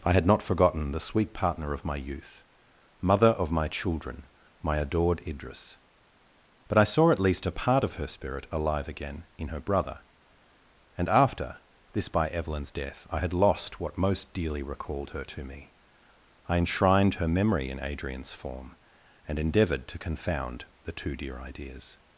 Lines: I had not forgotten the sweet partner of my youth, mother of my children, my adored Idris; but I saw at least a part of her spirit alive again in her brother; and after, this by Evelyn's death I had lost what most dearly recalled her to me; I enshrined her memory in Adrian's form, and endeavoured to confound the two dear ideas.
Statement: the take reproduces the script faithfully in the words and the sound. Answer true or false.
true